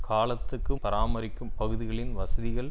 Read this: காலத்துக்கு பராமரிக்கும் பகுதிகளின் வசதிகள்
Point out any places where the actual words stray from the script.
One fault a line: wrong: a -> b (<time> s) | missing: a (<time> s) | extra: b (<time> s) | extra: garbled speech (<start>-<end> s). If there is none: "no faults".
no faults